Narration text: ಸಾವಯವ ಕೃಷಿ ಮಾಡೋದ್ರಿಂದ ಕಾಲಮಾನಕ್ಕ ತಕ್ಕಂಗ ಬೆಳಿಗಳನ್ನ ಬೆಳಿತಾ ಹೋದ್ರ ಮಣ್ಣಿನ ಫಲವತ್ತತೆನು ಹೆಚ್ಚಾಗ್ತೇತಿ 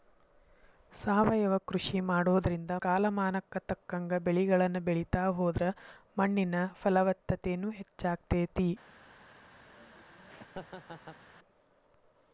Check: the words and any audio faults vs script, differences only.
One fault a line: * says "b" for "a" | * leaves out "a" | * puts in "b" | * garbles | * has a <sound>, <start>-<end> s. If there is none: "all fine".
* has a laugh, 9.7-11.2 s